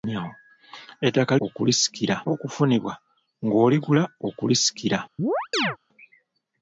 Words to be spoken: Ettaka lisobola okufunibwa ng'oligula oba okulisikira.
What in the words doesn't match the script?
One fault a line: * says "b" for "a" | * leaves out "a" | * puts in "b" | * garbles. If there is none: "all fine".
* says "okulisikira" for "lisobola"
* leaves out "oba"